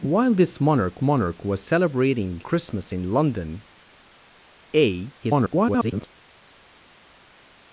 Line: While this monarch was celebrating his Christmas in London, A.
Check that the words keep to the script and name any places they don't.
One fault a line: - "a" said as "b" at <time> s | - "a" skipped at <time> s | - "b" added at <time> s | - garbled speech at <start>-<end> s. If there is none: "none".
- "monarch" added at 1.0 s
- "his" skipped at 2.4 s
- garbled speech at 5.2-6.1 s